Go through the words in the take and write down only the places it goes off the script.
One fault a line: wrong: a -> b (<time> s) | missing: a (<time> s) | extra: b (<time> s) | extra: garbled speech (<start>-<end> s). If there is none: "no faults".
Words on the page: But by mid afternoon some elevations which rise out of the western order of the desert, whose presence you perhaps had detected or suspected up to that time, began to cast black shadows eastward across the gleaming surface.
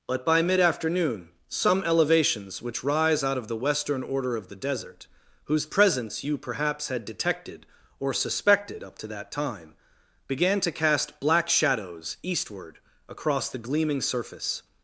no faults